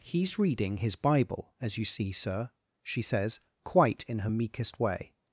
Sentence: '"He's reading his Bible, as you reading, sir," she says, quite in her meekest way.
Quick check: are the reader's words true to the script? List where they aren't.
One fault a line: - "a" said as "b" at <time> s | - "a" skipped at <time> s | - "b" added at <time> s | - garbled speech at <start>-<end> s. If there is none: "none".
- "reading" said as "see" at 1.9 s